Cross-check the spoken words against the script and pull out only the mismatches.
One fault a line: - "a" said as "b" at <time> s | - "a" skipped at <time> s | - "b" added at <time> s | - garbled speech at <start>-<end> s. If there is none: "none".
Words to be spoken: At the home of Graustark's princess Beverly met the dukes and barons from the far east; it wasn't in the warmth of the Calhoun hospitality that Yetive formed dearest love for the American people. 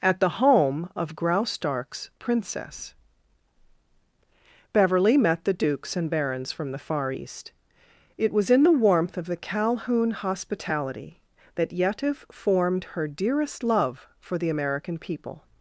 - "wasn't" said as "was" at 8.3 s
- "her" added at 12.9 s